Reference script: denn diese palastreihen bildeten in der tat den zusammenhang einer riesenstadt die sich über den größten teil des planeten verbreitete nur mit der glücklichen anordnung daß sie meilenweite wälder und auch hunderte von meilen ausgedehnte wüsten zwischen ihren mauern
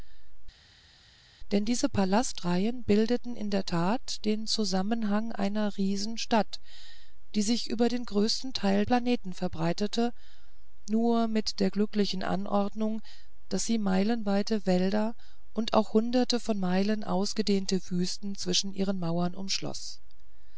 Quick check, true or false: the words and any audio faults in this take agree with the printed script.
false